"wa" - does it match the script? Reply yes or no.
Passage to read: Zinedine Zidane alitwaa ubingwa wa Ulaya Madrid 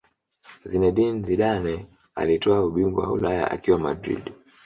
yes